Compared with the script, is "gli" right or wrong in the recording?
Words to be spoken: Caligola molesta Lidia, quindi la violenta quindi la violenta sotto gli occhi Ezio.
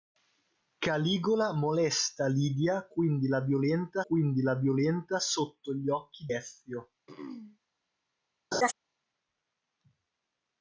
right